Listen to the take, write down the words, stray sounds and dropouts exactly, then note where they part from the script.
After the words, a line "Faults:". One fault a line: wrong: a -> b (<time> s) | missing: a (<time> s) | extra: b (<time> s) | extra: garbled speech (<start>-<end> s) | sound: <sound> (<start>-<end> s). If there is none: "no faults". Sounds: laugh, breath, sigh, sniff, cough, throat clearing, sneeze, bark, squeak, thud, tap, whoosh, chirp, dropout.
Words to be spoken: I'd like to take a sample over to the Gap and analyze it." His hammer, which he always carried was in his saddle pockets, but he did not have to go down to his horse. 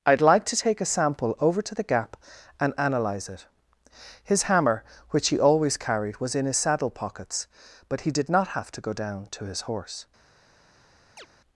I'd like to take a sample over to the Gap and analyze it." His hammer, which he always carried was in his saddle pockets, but he did not have to go down to his horse.
Faults:
sound: chirp (11.2-11.3 s)